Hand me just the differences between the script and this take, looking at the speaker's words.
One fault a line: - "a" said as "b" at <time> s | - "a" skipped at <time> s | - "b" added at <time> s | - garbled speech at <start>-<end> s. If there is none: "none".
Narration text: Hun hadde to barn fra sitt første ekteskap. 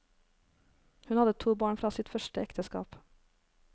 none